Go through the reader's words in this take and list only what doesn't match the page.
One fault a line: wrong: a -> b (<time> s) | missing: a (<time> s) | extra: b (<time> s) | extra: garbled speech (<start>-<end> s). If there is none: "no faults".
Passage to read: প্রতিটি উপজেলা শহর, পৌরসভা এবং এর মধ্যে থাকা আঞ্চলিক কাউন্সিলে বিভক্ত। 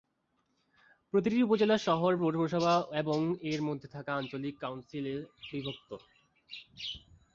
no faults